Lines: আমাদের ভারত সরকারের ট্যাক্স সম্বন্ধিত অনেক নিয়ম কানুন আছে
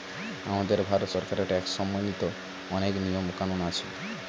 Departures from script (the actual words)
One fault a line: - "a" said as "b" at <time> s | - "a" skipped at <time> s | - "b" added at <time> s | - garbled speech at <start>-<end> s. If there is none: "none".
none